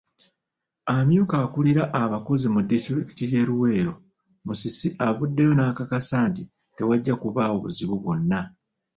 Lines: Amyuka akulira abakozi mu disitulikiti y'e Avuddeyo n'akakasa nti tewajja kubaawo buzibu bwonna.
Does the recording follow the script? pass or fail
fail